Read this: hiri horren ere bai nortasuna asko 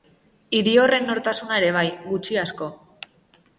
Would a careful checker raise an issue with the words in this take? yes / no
yes